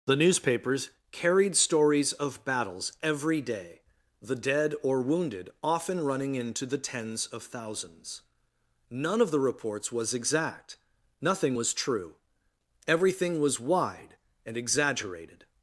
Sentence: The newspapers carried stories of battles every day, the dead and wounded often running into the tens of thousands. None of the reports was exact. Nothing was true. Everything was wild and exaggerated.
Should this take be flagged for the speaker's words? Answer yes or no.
yes